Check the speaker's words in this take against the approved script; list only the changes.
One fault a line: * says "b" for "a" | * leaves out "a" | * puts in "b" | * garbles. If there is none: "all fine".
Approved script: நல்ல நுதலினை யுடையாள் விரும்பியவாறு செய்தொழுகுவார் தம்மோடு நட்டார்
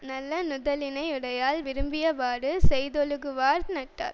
* leaves out "தம்மோடு"